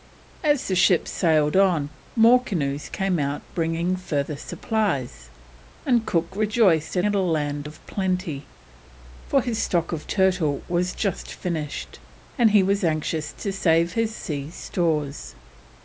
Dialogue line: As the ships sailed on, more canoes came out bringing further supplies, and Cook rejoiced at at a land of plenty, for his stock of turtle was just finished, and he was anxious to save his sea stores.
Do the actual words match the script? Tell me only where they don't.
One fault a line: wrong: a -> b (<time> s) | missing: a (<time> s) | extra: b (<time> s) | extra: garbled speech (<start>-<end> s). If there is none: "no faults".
no faults